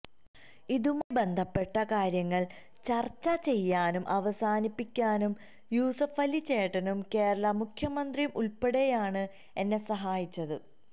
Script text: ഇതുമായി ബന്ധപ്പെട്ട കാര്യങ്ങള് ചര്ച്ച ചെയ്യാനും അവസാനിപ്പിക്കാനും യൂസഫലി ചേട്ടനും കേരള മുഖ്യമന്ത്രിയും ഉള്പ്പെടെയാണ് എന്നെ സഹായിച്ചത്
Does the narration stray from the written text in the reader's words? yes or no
no